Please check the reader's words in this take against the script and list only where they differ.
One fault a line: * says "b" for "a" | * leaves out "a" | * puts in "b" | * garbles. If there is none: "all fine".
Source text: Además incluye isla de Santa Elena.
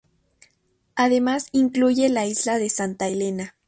* puts in "la"